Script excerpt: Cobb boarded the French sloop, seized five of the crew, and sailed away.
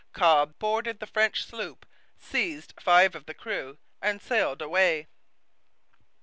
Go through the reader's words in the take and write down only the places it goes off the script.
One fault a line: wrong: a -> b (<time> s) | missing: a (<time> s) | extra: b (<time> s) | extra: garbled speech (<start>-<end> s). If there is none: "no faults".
no faults